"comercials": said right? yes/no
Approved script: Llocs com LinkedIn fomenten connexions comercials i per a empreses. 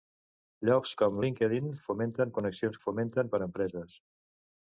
no